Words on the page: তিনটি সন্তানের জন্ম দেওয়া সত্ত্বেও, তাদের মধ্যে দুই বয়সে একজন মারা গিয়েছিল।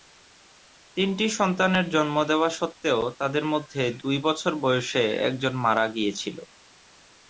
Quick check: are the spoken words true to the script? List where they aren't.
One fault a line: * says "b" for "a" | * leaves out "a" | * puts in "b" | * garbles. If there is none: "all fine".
* puts in "বছর"